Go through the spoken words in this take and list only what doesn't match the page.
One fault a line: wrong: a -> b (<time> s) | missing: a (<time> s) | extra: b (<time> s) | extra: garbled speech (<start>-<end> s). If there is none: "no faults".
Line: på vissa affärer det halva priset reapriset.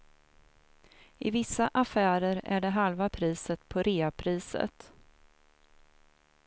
wrong: på -> I (1.2 s)
extra: är (2.4 s)
extra: på (3.7 s)